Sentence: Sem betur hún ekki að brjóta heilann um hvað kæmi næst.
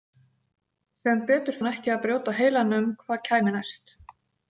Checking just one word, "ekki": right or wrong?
right